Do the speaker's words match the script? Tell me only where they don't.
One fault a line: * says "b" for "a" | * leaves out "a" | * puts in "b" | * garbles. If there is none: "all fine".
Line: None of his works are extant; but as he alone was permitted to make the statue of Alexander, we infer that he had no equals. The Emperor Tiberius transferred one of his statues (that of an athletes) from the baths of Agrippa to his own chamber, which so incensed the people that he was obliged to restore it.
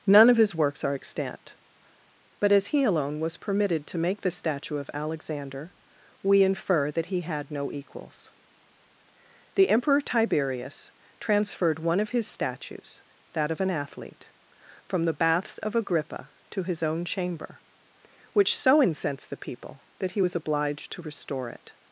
* says "athlete" for "athletes"